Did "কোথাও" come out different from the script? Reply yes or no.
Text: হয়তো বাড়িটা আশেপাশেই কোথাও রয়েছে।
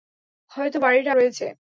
yes